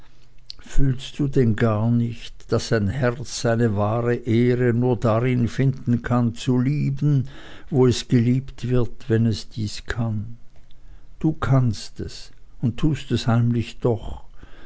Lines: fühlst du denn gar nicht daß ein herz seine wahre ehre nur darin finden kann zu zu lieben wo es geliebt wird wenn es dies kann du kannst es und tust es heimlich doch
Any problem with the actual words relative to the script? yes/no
yes